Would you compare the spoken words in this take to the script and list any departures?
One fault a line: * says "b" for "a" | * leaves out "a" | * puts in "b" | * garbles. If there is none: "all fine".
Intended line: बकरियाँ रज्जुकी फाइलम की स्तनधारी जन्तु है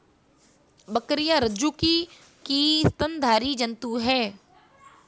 * leaves out "फाइलम"